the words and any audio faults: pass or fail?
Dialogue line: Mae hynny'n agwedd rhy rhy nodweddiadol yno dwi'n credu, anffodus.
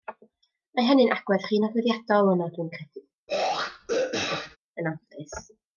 fail